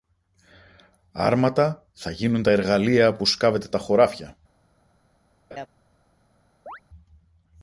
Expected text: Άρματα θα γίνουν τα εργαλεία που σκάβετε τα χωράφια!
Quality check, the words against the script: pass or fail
pass